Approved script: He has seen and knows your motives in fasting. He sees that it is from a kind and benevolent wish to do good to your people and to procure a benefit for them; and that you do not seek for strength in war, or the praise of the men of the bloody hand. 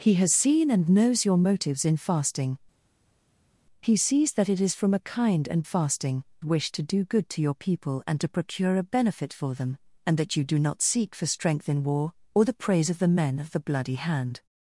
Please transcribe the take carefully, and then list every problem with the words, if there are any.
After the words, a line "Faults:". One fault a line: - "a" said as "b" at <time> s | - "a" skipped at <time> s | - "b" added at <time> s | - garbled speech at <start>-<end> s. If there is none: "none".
He has seen and knows your motives in fasting. He sees that it is from a kind and fasting wish to do good to your people and to procure a benefit for them; and that you do not seek for strength in war, or the praise of the men of the bloody hand.
Faults:
- "benevolent" said as "fasting" at 5.6 s